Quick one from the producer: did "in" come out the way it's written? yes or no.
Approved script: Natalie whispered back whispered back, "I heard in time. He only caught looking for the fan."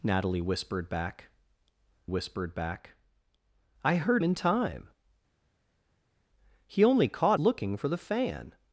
yes